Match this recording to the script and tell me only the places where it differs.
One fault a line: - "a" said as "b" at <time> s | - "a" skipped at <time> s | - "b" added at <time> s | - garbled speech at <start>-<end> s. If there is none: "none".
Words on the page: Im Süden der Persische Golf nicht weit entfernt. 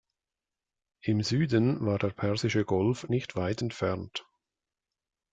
- "war" added at 1.9 s